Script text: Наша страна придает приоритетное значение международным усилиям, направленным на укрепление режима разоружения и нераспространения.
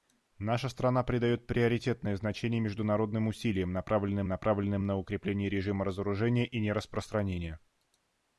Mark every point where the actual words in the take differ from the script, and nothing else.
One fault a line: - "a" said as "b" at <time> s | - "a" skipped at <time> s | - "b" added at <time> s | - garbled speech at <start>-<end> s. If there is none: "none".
- "направленным" added at 4.3 s